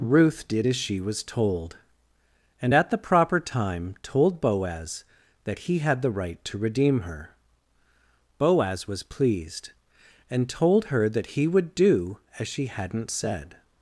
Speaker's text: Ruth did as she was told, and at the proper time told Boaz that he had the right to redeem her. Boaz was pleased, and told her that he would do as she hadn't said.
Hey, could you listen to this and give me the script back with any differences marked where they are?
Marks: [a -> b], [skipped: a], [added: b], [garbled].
Ruth did as she was told, and at the proper time told Boaz that he had the right to redeem her. Boaz was pleased, and told her that he would do as she hadn't said.